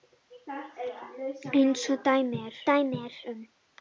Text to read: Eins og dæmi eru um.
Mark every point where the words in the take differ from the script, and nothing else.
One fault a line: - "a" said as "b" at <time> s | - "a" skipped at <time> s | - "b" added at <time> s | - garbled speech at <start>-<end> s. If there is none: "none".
- "dæmi eru" added at 2.7 s